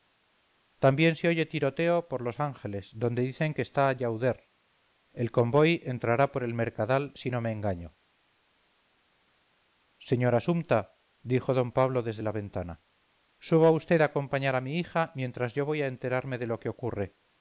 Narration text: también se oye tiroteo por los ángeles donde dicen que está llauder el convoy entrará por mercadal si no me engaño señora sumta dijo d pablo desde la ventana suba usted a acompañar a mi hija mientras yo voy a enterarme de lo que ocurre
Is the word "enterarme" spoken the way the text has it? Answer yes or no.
yes